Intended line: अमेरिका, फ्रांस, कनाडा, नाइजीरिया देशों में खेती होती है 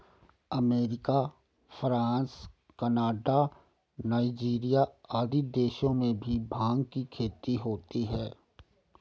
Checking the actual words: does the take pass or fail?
fail